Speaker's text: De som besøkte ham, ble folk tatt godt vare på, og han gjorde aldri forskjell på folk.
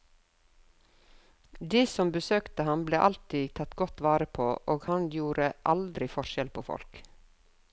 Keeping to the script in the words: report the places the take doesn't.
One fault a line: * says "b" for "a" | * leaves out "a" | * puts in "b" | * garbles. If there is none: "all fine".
* says "alltid" for "folk"